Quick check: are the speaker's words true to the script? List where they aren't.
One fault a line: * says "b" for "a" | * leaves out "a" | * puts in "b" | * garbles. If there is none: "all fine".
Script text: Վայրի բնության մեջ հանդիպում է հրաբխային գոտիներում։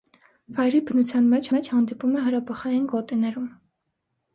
* puts in "մեջ"